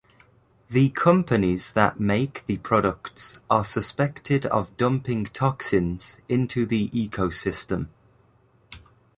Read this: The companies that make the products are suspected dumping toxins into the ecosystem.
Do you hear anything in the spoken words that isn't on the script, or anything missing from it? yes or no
yes